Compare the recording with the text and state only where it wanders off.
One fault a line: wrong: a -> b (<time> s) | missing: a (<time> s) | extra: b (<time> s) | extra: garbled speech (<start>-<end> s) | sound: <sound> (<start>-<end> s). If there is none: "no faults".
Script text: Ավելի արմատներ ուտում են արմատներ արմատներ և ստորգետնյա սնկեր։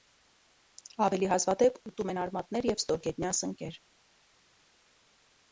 wrong: արմատներ -> հազվադեպ (1.3 s)
missing: արմատներ (2.7 s)